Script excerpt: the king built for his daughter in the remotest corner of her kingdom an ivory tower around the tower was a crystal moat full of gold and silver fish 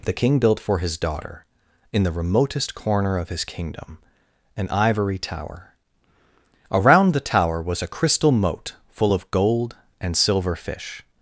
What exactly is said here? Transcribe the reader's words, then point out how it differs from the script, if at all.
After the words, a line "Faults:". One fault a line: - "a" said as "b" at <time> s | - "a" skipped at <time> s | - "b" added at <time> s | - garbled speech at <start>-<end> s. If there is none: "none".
the king built for his daughter in the remotest corner of his kingdom an ivory tower around the tower was a crystal moat full of gold and silver fish
Faults:
- "her" said as "his" at 3.3 s